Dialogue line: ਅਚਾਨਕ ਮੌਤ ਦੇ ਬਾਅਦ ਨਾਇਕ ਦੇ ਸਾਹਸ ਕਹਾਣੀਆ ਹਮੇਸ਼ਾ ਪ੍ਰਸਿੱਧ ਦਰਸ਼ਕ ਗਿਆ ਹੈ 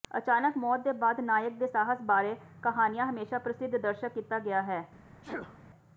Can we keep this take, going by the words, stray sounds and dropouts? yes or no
no